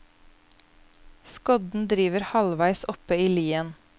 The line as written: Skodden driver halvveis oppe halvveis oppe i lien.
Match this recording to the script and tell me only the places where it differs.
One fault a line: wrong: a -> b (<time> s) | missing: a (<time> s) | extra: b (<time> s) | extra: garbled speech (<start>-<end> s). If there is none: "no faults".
missing: halvveis oppe (3.2 s)